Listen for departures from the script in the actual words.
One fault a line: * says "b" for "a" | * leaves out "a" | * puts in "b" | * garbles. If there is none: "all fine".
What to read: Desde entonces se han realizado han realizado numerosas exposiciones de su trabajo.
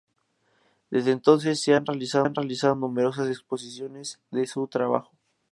all fine